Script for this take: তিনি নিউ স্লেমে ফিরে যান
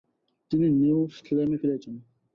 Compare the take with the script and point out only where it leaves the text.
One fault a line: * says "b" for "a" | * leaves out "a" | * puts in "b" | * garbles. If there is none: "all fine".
all fine